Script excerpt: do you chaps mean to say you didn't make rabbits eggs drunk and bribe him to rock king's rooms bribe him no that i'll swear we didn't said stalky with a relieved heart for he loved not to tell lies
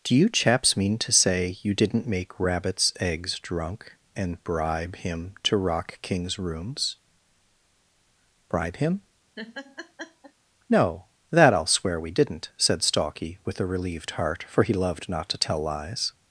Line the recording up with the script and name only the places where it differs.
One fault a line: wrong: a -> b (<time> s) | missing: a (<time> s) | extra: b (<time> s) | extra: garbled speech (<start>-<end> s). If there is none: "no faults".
no faults